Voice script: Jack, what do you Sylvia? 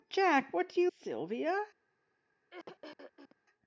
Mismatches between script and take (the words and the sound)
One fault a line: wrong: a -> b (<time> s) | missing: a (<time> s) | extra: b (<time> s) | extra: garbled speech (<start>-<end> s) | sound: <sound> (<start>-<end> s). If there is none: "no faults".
sound: throat clearing (2.5-3.4 s)